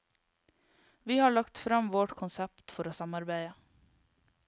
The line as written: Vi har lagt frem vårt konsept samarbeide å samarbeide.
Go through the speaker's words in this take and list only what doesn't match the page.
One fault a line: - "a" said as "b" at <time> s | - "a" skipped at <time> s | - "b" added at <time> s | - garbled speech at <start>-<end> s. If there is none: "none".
- "samarbeide" said as "for" at 2.7 s